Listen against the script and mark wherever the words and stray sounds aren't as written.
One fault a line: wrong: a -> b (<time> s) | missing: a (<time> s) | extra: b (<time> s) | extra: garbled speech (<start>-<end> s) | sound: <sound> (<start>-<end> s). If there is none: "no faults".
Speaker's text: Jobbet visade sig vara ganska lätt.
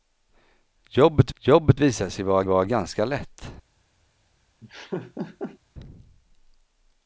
extra: jobbet (1.4 s)
extra: vara (2.4 s)
sound: laugh (4.6-5.6 s)